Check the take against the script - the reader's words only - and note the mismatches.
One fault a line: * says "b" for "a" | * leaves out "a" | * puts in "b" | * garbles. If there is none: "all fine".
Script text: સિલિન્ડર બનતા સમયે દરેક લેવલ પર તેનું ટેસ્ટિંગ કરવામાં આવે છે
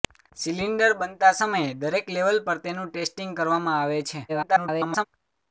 * garbles